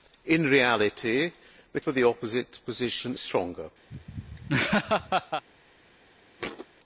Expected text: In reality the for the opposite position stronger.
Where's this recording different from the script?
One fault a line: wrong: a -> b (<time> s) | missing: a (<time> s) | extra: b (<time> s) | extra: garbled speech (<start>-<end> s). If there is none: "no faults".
no faults